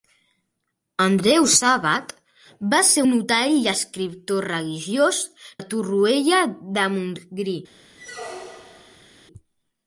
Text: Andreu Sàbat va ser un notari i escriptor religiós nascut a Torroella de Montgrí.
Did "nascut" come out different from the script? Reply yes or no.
yes